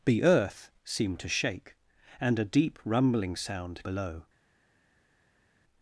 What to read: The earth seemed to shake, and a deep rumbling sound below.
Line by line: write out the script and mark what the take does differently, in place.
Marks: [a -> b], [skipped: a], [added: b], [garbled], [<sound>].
The earth seemed to shake, and a deep rumbling sound below.